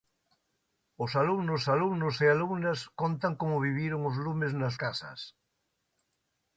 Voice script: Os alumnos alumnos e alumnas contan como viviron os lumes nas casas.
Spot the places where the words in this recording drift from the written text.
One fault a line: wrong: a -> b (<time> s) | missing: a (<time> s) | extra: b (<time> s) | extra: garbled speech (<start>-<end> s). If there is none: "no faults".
no faults